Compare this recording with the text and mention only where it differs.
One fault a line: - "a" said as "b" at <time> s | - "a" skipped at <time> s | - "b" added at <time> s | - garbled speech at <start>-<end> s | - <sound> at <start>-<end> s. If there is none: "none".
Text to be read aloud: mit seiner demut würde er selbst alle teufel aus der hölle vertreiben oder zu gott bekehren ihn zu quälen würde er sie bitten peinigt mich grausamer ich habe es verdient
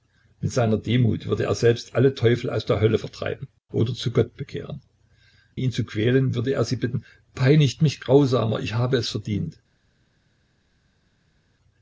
none